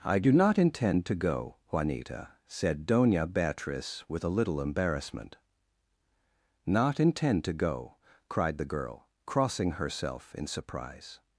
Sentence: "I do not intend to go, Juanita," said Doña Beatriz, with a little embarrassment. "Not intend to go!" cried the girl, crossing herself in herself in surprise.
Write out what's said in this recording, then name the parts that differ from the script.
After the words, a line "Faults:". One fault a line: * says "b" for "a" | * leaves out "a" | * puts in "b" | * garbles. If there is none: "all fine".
"I do not intend to go, Juanita," said Doña Beatriz, with a little embarrassment. "Not intend to go!" cried the girl, crossing herself in surprise.
Faults:
* leaves out "herself in"